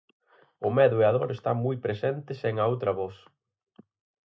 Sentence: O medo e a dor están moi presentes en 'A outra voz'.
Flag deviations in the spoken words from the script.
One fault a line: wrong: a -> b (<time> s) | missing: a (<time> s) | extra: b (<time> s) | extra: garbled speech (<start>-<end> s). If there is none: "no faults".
no faults